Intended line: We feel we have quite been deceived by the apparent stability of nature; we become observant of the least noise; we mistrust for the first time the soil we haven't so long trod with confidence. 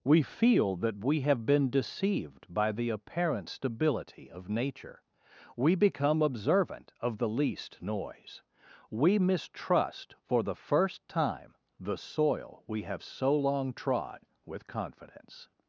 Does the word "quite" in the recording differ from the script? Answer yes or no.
yes